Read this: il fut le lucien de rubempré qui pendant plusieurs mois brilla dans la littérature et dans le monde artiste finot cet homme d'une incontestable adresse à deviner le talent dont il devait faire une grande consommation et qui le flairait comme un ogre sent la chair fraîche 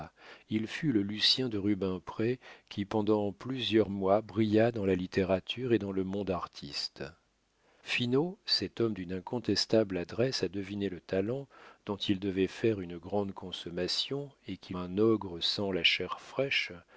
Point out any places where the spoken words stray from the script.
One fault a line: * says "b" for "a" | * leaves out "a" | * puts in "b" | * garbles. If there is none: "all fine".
* leaves out "le flairait comme"